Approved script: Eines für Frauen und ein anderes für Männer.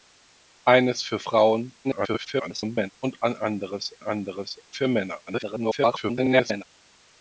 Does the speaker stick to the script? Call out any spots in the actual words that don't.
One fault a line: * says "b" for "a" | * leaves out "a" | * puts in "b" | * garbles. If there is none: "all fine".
* garbles
* puts in "anderes"
* garbles